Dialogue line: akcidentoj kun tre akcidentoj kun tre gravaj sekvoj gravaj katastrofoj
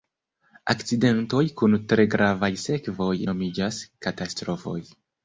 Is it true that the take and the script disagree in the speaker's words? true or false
true